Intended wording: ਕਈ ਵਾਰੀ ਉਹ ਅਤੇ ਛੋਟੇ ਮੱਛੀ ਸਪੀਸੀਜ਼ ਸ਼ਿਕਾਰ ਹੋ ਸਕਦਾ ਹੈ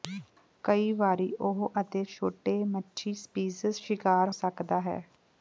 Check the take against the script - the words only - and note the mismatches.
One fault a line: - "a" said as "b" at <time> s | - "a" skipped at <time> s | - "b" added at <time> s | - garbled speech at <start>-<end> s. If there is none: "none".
- "ਹੋ" skipped at 4.3 s